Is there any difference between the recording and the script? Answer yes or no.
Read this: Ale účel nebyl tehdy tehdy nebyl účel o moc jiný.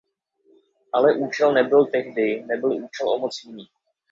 yes